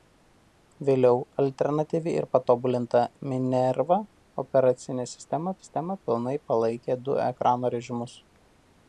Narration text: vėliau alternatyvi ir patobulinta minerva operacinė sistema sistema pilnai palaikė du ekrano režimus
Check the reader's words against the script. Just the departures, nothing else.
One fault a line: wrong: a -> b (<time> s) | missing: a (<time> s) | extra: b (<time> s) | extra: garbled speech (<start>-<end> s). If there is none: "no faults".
no faults